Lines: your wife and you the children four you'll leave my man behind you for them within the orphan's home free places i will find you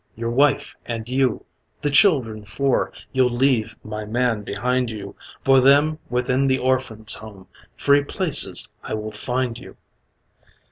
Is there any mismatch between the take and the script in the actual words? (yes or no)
no